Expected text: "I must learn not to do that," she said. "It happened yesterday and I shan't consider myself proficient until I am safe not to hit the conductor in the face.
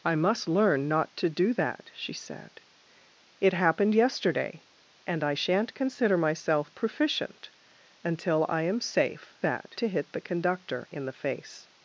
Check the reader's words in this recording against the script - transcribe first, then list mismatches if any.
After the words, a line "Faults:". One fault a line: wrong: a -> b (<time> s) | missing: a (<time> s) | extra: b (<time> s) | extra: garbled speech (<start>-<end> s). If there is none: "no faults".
"I must learn not to do that," she said. "It happened yesterday and I shan't consider myself proficient until I am safe that to hit the conductor in the face.
Faults:
wrong: not -> that (9.4 s)